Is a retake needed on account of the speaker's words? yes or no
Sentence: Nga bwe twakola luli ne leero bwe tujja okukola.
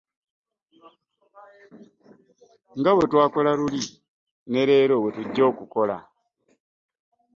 no